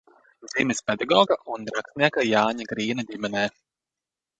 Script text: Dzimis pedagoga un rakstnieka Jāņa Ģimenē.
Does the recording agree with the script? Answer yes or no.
no